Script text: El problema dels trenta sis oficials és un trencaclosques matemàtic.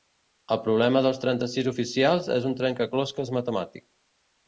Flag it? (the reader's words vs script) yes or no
no